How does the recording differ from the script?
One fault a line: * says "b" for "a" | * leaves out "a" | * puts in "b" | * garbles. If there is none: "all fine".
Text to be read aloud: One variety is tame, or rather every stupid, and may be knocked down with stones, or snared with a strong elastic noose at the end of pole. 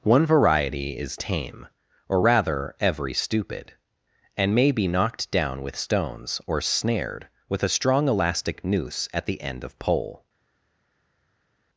all fine